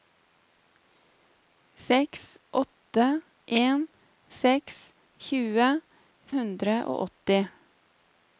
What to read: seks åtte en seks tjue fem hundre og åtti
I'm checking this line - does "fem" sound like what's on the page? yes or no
no